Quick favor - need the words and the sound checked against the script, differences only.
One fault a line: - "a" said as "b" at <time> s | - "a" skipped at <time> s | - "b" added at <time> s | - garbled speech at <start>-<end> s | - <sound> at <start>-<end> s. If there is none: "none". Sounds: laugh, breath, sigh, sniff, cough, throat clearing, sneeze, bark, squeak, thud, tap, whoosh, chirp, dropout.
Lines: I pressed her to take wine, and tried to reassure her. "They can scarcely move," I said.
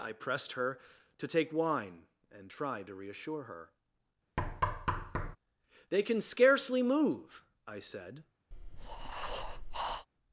- thud at 4.4-5.4 s
- breath at 8.5-10.1 s